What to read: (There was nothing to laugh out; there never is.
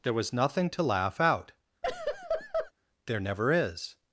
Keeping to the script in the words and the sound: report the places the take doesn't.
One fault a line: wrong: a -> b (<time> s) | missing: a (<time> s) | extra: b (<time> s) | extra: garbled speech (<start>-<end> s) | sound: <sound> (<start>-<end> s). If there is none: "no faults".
sound: laugh (1.8-2.7 s)